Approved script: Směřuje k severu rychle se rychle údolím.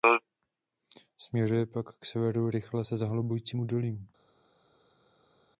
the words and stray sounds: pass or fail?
fail